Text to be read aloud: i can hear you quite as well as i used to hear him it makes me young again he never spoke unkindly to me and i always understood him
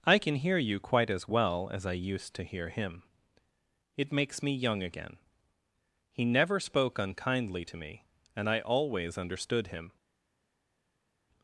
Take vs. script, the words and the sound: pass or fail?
pass